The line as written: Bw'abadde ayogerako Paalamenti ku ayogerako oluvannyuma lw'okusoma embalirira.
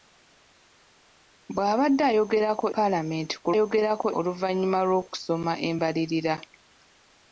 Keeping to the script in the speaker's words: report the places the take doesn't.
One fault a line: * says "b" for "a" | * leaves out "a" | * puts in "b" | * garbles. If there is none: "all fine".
all fine